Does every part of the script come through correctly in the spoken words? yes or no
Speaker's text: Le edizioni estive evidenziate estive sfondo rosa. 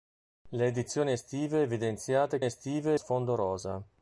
yes